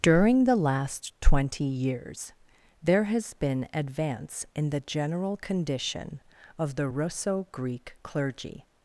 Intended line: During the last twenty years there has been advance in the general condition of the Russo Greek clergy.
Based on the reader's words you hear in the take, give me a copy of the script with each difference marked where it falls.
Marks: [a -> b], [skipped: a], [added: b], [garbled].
During the last twenty years there has been advance in the general condition of the Russo Greek clergy.